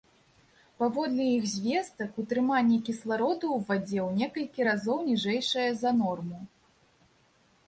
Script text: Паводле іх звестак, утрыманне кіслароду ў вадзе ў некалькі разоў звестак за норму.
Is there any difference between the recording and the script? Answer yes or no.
yes